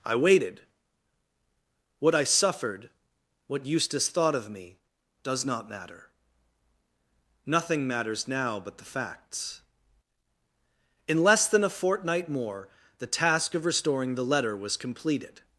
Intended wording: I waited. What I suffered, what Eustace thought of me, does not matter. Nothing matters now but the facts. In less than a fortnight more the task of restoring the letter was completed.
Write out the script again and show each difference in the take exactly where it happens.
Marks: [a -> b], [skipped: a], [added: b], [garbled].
I waited. What I suffered, what Eustace thought of me, does not matter. Nothing matters now but the facts. In less than a fortnight more the task of restoring the letter was completed.